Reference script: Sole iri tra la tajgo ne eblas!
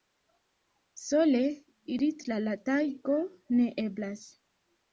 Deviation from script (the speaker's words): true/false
false